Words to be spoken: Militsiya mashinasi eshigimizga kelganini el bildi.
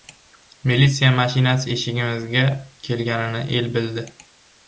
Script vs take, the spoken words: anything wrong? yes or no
no